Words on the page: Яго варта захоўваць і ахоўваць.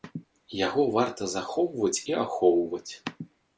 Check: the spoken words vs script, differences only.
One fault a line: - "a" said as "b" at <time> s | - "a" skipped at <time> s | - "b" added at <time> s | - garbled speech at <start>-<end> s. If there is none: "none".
none